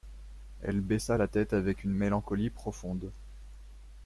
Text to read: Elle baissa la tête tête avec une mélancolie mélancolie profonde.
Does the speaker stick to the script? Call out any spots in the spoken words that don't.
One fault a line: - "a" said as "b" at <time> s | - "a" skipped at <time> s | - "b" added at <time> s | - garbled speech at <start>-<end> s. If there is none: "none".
- "tête" skipped at 1.5 s
- "mélancolie" skipped at 2.5 s